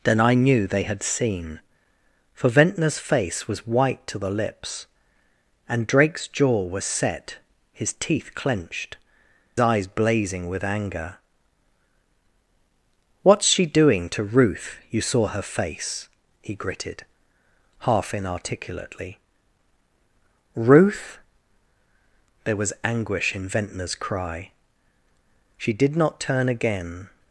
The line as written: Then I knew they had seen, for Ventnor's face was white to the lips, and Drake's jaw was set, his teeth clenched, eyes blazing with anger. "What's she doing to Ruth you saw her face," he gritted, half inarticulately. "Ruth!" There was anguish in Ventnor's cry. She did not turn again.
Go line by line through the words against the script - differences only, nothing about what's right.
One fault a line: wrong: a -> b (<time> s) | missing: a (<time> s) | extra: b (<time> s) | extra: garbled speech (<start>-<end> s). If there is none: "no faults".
no faults